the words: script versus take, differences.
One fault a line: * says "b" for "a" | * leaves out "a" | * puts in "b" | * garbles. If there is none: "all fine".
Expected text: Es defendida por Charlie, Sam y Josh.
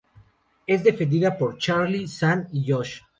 all fine